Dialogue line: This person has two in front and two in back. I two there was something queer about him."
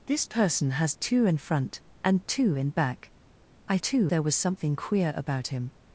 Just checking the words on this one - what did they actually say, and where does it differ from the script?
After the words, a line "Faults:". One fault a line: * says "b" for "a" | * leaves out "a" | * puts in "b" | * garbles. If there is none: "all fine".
This person has two in front and two in back. I two there was something queer about him."
Faults:
all fine